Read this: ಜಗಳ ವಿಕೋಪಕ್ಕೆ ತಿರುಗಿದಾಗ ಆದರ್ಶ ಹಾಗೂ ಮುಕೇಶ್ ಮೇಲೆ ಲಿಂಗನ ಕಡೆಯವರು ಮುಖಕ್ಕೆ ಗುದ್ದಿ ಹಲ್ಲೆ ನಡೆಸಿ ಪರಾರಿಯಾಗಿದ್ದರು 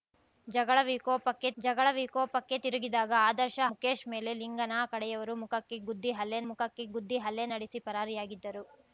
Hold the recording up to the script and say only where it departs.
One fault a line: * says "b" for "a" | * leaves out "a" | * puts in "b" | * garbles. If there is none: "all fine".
* puts in "ಜಗಳ ವಿಕೋಪಕ್ಕೆ"
* leaves out "ಹಾಗೂ"
* puts in "ಮುಖಕ್ಕೆ ಗುದ್ದಿ ಹಲ್ಲೆ"